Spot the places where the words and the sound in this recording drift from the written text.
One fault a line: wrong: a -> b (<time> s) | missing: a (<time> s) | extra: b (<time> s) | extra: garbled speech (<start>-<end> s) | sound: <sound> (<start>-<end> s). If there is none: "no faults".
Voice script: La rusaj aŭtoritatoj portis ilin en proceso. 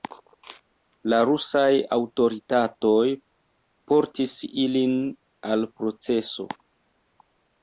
wrong: en -> al (5.5 s)